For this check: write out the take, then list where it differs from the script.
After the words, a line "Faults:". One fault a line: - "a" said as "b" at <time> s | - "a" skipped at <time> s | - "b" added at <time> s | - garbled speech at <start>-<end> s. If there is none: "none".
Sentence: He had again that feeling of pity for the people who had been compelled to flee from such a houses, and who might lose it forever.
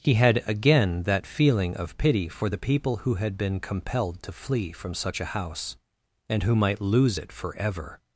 He had again that feeling of pity for the people who had been compelled to flee from such a house, and who might lose it forever.
Faults:
- "houses" said as "house" at 5.3 s